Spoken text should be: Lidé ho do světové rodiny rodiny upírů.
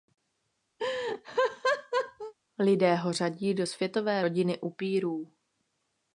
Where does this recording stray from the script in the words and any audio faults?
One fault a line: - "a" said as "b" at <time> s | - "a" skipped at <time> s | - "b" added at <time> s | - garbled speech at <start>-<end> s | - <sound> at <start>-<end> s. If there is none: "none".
- laugh at 0.8-2.3 s
- "řadí" added at 3.1 s
- "rodiny" skipped at 4.6 s